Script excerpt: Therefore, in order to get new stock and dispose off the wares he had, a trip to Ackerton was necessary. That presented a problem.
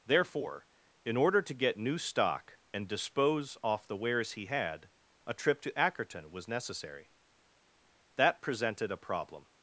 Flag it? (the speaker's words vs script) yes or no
no